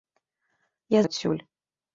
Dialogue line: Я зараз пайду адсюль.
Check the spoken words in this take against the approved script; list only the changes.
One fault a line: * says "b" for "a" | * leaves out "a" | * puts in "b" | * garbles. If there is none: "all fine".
* leaves out "зараз пайду"